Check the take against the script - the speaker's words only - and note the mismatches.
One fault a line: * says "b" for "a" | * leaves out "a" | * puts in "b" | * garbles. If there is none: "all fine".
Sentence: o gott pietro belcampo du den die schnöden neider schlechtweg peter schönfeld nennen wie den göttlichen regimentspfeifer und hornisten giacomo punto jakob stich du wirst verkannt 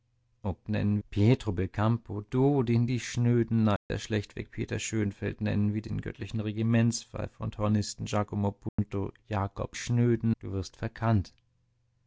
* says "nennen" for "gott"
* says "schnöden" for "stich"